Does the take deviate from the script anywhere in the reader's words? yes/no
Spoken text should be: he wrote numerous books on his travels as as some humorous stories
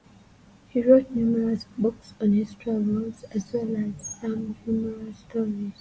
yes